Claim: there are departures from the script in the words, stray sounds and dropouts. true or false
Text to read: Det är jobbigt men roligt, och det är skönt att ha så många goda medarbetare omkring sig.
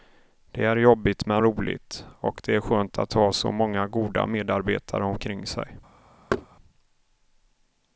true